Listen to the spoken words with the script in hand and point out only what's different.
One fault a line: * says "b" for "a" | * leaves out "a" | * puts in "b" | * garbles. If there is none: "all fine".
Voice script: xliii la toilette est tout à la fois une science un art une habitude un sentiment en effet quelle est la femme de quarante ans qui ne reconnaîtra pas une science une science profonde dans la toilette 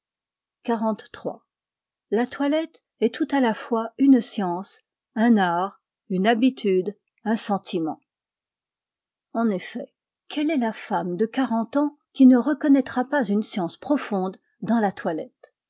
* leaves out "une science"